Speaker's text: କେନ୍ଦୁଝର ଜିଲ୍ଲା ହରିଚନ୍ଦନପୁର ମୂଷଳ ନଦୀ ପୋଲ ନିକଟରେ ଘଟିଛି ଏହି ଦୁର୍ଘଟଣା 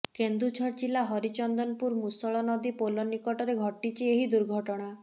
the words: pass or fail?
pass